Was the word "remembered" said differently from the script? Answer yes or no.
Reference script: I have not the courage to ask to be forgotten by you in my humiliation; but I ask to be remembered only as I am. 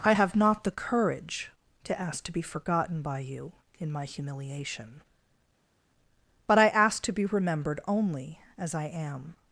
no